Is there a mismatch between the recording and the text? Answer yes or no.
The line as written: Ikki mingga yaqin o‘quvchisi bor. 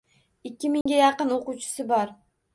no